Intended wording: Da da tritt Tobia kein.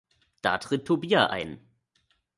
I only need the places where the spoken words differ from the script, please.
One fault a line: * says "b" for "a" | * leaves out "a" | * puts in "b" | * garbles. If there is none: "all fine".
* leaves out "da"
* says "ein" for "kein"